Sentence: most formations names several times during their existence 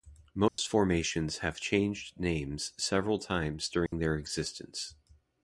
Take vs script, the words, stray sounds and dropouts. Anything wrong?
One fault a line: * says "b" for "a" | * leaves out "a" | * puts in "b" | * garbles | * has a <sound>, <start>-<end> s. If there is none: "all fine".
* has a dropout, 0.5-0.6 s
* puts in "have changed"
* has a dropout, 3.9-3.9 s